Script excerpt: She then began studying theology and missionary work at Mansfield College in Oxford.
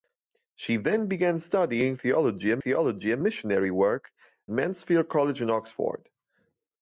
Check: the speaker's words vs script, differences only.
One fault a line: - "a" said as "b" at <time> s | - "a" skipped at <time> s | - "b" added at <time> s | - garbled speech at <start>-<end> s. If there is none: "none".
- "theology and" added at 2.6 s
- "at" skipped at 4.1 s